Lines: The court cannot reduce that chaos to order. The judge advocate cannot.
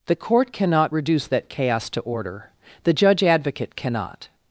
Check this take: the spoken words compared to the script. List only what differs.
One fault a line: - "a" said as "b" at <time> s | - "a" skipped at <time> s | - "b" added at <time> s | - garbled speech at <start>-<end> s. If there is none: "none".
none